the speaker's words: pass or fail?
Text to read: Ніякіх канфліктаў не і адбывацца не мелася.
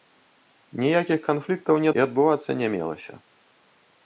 pass